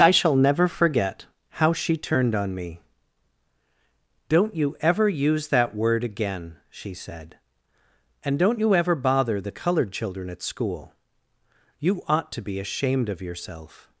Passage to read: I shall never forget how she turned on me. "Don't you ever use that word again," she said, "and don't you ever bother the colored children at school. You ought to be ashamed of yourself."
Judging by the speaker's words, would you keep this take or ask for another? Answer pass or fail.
pass